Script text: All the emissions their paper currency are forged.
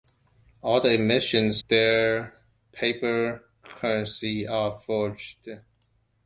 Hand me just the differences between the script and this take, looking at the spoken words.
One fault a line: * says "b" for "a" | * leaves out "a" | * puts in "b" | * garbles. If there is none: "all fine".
all fine